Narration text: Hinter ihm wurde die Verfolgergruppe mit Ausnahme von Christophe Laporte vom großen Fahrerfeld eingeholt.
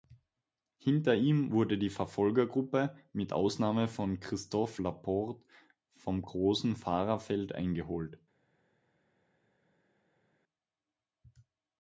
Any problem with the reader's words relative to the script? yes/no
no